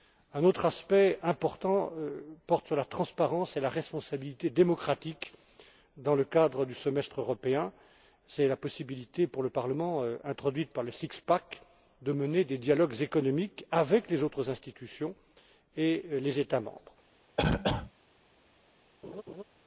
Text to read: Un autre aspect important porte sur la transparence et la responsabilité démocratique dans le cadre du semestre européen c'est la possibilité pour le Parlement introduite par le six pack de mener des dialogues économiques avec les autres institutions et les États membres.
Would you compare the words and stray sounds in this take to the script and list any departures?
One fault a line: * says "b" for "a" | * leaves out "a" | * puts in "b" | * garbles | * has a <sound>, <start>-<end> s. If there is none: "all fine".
* has a cough, 17.4-17.9 s
* has a laugh, 19.0-19.4 s